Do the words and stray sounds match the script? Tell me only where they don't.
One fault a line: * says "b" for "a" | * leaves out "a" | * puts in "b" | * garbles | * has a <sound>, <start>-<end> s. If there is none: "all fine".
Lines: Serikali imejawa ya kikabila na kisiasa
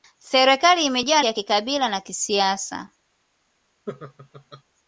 * has a laugh, 3.9-4.6 s